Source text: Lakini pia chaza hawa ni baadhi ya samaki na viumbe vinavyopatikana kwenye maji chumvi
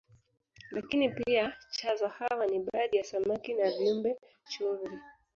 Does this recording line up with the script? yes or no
no